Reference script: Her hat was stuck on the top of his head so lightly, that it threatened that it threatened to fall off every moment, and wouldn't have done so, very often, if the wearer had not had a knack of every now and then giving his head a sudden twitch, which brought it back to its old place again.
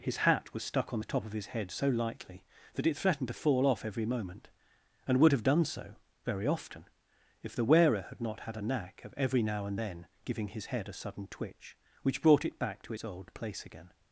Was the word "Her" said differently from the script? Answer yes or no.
yes